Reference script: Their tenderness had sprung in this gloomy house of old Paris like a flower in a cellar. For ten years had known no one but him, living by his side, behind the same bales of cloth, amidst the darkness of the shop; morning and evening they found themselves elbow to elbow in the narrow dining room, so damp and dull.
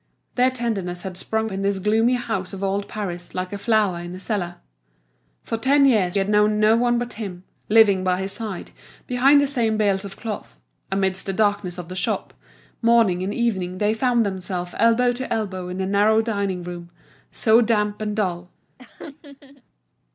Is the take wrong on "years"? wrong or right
right